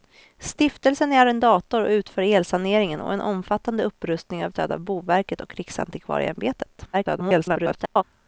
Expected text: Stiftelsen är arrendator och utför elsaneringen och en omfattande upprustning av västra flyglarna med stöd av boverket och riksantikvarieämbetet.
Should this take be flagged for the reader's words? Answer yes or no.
yes